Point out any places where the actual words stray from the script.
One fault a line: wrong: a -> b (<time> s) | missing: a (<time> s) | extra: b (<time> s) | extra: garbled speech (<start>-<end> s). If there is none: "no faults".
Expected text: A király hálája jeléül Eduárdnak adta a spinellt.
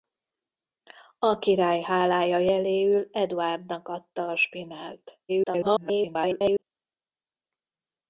extra: garbled speech (5.3-6.6 s)